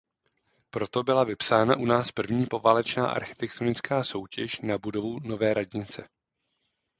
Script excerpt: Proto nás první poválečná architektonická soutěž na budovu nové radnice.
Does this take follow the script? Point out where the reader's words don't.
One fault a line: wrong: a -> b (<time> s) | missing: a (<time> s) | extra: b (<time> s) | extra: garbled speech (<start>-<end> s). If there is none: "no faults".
extra: byla vypsána u (1.0 s)